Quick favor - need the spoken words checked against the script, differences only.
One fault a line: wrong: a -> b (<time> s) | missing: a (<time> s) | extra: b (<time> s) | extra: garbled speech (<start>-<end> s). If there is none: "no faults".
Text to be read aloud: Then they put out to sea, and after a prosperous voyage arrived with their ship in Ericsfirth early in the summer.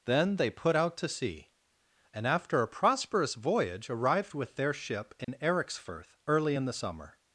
no faults